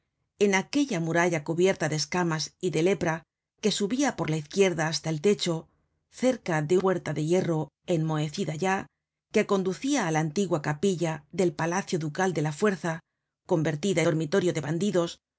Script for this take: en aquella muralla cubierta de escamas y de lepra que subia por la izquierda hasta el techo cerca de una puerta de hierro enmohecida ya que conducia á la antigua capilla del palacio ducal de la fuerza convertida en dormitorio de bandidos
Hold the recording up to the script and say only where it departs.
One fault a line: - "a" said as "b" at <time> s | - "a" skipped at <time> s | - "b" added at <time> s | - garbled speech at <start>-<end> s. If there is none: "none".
- "una" skipped at 6.8 s
- "en" skipped at 14.0 s